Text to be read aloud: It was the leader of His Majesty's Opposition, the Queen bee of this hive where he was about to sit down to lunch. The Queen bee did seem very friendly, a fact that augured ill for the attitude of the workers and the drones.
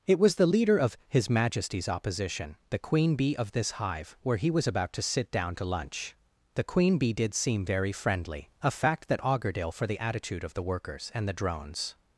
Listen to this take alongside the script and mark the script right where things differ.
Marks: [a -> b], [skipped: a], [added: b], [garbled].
It was the leader of His Majesty's Opposition, the Queen bee of this hive where he was about to sit down to lunch. The Queen bee did seem very friendly, a fact that augured ill for the attitude of the workers and the drones.